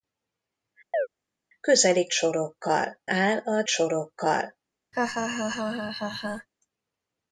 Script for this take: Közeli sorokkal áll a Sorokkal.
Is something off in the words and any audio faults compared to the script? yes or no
yes